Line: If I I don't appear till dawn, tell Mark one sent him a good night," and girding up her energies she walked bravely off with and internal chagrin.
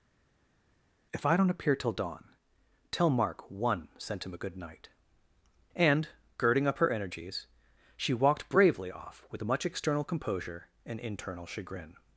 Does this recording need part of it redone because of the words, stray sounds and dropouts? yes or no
yes